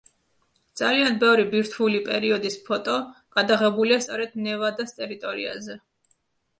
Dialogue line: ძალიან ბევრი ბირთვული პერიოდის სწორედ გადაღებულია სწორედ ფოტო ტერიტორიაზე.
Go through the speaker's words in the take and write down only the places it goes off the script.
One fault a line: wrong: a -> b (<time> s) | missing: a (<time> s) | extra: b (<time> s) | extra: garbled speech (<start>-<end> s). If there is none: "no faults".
wrong: სწორედ -> ფოტო (2.7 s)
wrong: ფოტო -> ნევადას (4.5 s)